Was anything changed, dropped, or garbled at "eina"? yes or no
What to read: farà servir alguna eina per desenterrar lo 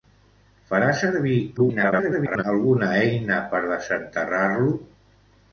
no